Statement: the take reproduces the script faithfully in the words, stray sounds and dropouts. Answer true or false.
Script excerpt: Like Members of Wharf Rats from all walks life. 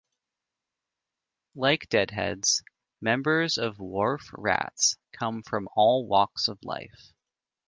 false